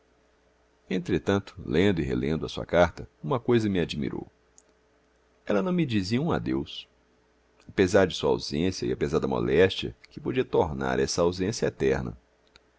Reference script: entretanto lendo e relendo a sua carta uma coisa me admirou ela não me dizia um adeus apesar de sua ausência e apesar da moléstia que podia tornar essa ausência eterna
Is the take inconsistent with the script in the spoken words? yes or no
no